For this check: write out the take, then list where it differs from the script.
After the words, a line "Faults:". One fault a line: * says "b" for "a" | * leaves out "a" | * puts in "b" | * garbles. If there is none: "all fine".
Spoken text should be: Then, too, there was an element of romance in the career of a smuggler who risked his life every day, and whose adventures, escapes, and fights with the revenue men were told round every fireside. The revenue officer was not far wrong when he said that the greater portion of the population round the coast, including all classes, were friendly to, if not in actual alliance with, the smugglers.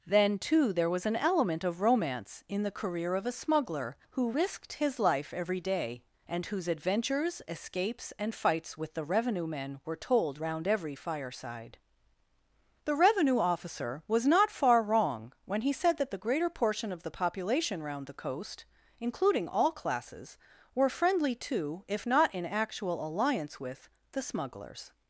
Then, too, there was an element of romance in the career of a smuggler who risked his life every day, and whose adventures, escapes, and fights with the revenue men were told round every fireside. The revenue officer was not far wrong when he said that the greater portion of the population round the coast, including all classes, were friendly to, if not in actual alliance with, the smugglers.
Faults:
all fine